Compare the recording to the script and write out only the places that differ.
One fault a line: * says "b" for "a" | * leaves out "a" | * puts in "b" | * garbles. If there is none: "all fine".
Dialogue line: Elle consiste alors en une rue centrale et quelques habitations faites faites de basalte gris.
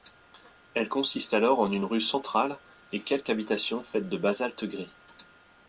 * leaves out "faites"